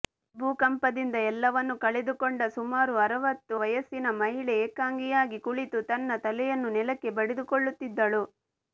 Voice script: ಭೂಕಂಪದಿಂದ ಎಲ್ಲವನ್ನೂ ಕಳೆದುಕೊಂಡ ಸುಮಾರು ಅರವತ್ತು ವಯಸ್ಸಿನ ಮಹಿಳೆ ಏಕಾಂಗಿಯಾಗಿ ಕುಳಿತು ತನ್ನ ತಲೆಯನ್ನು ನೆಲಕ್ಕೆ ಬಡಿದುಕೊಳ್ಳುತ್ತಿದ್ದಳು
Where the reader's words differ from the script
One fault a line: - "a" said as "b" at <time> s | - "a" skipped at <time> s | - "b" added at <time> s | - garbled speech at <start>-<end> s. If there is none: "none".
none